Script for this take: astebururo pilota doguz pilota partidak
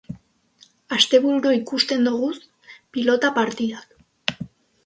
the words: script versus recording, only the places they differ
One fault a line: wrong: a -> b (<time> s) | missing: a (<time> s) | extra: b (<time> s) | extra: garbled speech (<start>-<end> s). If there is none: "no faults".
wrong: pilota -> ikusten (1.6 s)